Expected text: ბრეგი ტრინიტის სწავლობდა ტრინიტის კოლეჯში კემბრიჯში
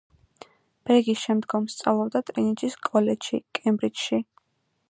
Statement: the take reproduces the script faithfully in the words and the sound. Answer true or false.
false